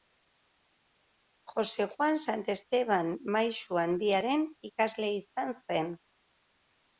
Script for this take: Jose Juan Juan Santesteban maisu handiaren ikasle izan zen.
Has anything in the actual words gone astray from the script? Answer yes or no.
yes